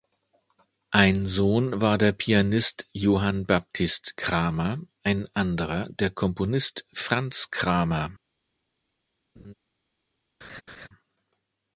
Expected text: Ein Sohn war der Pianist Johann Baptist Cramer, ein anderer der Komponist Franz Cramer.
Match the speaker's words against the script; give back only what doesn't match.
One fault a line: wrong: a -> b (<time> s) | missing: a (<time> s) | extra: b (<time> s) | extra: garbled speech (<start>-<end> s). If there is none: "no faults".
no faults